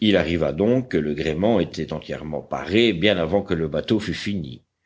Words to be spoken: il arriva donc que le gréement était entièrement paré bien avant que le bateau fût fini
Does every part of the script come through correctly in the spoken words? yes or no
yes